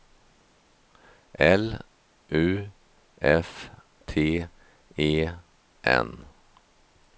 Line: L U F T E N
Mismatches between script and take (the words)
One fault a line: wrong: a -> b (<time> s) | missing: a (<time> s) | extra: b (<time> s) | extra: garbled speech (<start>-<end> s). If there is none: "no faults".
no faults